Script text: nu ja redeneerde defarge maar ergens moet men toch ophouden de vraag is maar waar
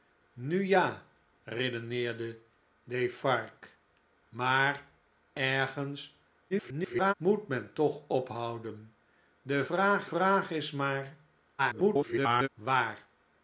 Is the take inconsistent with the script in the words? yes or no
yes